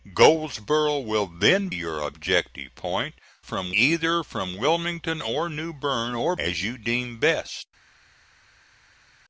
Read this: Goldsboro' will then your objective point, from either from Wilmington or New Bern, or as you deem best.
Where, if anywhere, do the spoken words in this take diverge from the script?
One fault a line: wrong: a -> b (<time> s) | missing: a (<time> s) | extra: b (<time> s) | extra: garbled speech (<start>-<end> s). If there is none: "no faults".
no faults